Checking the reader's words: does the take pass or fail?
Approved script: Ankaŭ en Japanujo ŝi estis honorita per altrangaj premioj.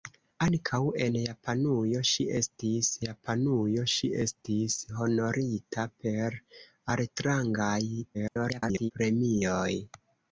fail